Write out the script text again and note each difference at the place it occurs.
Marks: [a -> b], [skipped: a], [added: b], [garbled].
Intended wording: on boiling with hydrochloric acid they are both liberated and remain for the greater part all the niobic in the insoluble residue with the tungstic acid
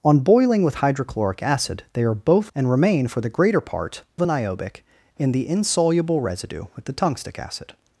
on boiling with hydrochloric acid they are both [skipped: liberated] and remain for the greater part [skipped: all] the niobic in the insoluble residue with the tungstic acid